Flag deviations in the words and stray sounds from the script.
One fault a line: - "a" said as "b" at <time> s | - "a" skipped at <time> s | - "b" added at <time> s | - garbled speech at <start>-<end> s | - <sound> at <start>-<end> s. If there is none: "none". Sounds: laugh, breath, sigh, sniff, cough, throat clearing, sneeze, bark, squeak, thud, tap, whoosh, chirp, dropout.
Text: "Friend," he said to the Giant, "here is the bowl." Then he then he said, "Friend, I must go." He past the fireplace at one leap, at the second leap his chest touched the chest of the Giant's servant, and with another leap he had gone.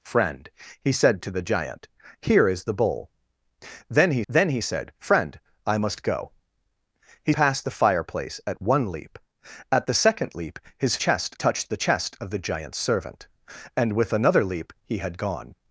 none